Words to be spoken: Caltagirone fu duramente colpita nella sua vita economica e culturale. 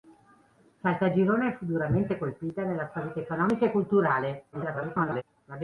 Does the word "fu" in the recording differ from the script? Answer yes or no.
no